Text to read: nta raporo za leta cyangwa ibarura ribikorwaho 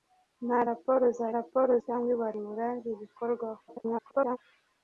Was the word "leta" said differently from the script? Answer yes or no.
yes